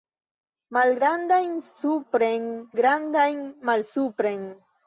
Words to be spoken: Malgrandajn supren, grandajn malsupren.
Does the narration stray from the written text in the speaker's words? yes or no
no